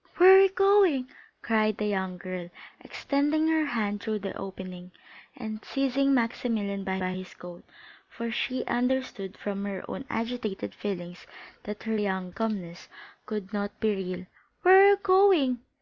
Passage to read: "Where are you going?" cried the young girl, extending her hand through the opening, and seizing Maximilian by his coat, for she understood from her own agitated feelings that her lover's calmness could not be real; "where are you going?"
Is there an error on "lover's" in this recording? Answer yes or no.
yes